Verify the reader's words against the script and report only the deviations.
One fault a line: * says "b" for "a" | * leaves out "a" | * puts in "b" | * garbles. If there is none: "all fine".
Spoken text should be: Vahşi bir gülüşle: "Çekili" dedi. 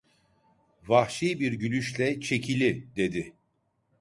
all fine